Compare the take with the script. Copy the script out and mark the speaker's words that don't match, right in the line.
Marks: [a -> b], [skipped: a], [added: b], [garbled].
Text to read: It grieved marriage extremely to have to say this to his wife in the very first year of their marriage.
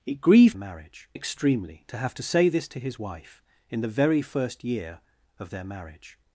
It grieved marriage extremely to have to say this to his wife in the very first year of their marriage.